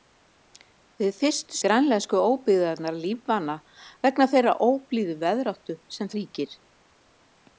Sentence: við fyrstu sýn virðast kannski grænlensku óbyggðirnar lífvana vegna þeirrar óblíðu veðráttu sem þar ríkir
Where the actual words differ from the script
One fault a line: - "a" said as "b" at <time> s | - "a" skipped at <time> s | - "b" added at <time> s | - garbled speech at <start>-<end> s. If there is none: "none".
- "sýn virðast kannski" skipped at 1.6 s
- "þar" skipped at 6.1 s